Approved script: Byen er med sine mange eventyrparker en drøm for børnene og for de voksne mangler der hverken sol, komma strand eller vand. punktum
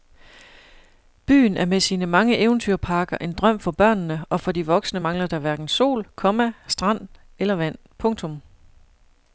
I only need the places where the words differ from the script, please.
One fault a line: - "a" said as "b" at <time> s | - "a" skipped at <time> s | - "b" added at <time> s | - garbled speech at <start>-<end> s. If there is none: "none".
none